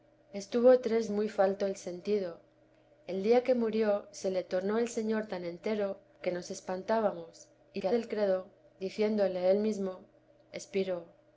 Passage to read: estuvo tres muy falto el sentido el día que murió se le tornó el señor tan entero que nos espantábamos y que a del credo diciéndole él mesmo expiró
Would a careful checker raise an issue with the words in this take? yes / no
no